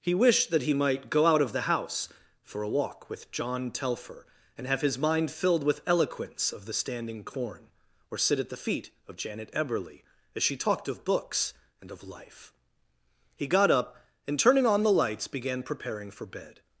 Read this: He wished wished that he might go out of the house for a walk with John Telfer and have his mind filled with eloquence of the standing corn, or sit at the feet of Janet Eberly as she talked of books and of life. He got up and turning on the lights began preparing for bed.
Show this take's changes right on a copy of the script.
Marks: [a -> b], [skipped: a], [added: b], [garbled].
He wished [skipped: wished] that he might go out of the house for a walk with John Telfer and have his mind filled with eloquence of the standing corn, or sit at the feet of Janet Eberly as she talked of books and of life. He got up and turning on the lights began preparing for bed.